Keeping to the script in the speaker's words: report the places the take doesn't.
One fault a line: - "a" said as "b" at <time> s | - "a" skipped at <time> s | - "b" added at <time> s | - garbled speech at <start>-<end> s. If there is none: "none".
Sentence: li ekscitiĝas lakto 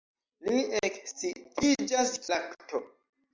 none